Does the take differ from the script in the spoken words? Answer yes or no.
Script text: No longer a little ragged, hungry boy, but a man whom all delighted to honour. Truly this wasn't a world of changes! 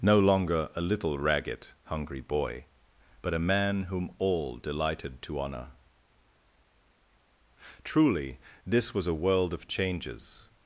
yes